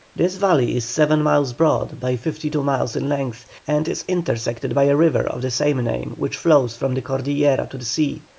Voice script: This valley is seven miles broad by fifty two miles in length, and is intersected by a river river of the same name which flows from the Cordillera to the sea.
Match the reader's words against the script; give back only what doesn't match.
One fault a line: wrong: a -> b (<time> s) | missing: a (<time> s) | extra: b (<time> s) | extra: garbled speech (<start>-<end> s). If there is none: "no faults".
missing: river (5.3 s)